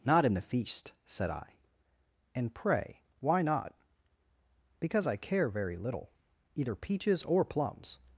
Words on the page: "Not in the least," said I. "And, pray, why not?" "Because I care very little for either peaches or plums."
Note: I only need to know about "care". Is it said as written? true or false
true